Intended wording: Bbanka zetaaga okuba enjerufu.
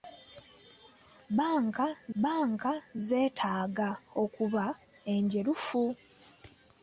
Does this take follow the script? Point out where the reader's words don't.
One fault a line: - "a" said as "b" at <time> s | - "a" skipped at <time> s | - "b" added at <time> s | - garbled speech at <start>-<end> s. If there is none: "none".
- "bbanka" added at 2.1 s